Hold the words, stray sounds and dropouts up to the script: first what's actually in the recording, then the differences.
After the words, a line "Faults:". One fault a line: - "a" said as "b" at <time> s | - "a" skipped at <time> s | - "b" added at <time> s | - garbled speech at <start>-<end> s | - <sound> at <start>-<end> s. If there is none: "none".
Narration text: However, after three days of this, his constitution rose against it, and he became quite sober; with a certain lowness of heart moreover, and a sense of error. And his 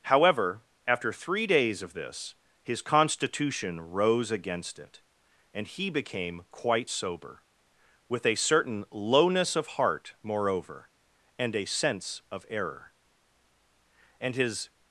However, after three days of this, his constitution rose against it, and he became quite sober; with a certain lowness of heart moreover, and a sense of error. And his
Faults:
none